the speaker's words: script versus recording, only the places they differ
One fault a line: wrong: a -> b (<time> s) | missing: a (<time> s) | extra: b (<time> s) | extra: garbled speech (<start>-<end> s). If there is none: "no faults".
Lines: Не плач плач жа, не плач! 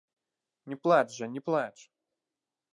missing: плач (1.1 s)